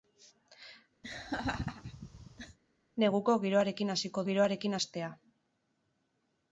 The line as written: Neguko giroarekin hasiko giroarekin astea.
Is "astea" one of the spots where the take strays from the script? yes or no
no